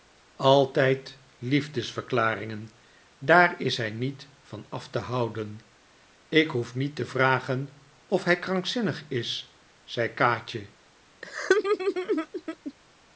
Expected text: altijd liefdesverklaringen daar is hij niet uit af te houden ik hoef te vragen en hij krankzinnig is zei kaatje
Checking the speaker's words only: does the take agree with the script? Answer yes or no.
no